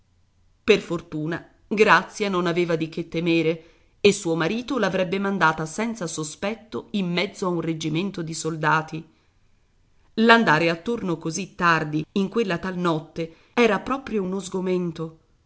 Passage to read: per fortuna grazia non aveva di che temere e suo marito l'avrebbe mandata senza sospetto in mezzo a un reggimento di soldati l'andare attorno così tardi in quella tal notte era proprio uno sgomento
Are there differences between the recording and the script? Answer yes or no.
no